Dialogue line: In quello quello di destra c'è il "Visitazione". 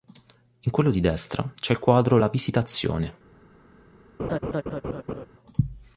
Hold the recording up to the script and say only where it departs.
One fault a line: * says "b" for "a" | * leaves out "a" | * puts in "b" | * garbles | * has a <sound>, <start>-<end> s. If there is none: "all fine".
* leaves out "quello"
* puts in "quadro la"
* has a laugh, 4.2-5.3 s